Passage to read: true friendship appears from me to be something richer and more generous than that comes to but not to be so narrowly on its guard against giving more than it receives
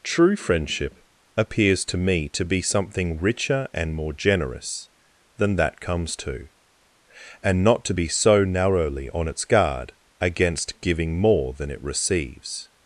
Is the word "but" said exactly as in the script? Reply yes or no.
no